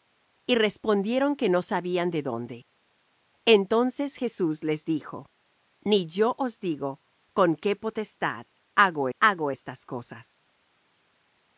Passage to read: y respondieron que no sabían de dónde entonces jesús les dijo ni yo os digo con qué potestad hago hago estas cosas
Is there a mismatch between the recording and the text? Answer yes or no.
no